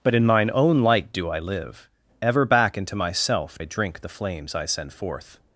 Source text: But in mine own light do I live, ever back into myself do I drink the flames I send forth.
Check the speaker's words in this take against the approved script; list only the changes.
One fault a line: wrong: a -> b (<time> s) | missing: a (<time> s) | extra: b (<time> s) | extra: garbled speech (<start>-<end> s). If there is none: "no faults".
missing: do (3.6 s)